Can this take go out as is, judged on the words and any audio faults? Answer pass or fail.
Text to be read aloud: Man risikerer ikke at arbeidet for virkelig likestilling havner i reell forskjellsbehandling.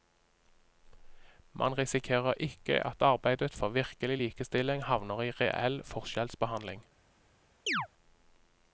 fail